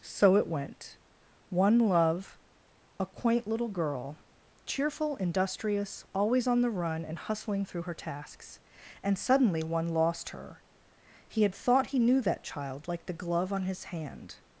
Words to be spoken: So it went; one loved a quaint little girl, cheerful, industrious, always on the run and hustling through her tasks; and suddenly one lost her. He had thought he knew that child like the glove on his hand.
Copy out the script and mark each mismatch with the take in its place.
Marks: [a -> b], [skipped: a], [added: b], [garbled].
So it went; one [loved -> love] a quaint little girl, cheerful, industrious, always on the run and hustling through her tasks; and suddenly one lost her. He had thought he knew that child like the glove on his hand.